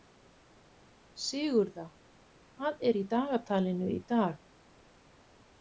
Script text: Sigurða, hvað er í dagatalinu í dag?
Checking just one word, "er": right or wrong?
right